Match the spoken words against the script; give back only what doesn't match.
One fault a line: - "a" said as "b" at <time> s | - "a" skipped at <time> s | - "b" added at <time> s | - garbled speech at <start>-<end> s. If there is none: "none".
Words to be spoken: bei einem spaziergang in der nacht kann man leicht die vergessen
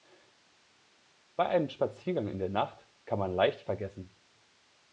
none